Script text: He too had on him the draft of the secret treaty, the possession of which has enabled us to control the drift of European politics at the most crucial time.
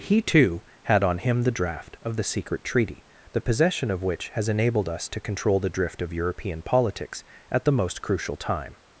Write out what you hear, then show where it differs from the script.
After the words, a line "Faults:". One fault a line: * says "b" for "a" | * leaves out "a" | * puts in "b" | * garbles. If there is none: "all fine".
He too had on him the draft of the secret treaty, the possession of which has enabled us to control the drift of European politics at the most crucial time.
Faults:
all fine